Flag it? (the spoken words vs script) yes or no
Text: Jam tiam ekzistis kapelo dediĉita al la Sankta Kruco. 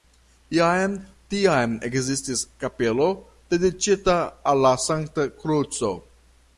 no